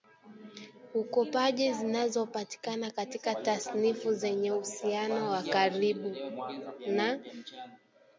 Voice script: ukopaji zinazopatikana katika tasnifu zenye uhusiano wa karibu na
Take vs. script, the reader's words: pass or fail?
pass